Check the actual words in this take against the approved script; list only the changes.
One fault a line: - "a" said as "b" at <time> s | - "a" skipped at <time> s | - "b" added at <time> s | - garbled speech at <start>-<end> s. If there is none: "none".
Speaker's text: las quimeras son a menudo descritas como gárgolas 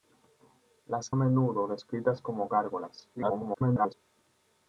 - "quimeras son" skipped at 1.1 s
- garbled speech at 3.1-3.9 s